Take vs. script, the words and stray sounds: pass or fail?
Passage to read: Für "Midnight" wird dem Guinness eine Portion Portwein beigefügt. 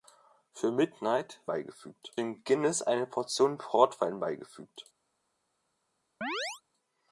fail